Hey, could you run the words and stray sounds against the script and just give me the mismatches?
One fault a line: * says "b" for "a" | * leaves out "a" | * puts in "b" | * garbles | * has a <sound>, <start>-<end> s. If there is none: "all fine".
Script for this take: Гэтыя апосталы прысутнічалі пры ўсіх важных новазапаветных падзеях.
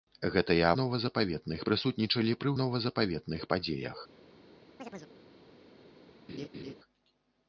* says "новазапаветных" for "апосталы"
* leaves out "ўсіх важных"
* has a chirp, 4.8-5.1 s
* has a laugh, 6.3-6.7 s